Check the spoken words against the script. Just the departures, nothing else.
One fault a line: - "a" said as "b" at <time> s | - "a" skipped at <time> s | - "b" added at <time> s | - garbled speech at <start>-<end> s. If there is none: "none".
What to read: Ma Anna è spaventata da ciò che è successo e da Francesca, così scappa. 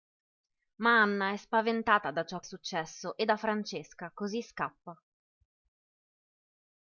- "che" skipped at 2.4 s